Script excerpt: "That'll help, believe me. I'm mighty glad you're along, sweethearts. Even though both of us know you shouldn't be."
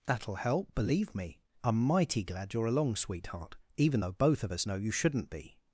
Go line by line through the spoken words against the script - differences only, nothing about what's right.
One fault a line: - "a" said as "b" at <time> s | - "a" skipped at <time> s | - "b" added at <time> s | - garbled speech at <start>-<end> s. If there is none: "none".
- "sweethearts" said as "sweetheart" at 3.0 s